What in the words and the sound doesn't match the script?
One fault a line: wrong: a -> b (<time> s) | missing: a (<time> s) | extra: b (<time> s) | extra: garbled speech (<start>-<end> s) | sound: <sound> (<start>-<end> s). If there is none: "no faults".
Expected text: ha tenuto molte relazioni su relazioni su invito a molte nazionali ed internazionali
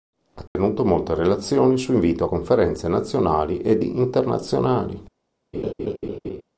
sound: dropout (0.5-0.6 s)
missing: relazioni su (1.9 s)
wrong: molte -> conferenze (2.3 s)
sound: laugh (5.5-6.4 s)